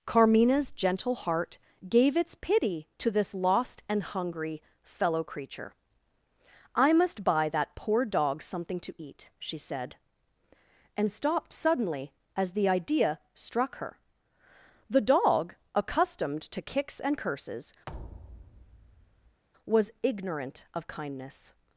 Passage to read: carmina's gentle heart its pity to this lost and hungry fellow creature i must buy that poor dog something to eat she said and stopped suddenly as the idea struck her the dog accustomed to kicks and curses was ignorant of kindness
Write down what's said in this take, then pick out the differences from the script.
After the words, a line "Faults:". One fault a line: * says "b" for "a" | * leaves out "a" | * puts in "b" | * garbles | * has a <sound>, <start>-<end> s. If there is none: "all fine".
carmina's gentle heart gave its pity to this lost and hungry fellow creature i must buy that poor dog something to eat she said and stopped suddenly as the idea struck her the dog accustomed to kicks and curses was ignorant of kindness
Faults:
* puts in "gave"
* has a thud, 17.9-19.4 s